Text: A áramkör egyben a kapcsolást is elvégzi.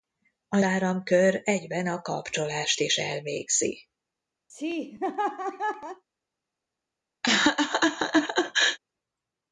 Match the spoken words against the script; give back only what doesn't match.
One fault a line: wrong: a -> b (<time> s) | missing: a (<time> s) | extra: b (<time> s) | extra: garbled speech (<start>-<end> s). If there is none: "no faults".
no faults